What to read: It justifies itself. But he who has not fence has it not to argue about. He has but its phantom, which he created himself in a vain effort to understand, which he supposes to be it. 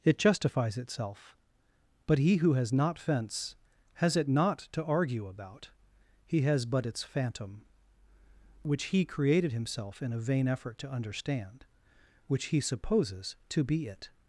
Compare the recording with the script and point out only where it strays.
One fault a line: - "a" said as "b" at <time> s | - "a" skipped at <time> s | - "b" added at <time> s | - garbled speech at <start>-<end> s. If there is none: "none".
none